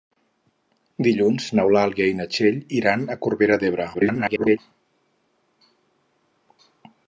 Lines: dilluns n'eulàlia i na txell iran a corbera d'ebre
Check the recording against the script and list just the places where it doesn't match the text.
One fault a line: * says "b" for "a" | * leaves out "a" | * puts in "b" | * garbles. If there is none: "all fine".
* garbles